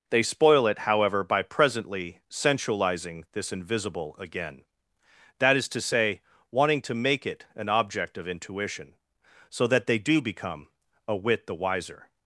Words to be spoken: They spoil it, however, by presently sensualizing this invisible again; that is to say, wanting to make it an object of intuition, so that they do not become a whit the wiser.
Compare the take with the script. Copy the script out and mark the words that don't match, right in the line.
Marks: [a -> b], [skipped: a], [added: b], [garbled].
They spoil it, however, by presently sensualizing this invisible again; that is to say, wanting to make it an object of intuition, so that they do [skipped: not] become a whit the wiser.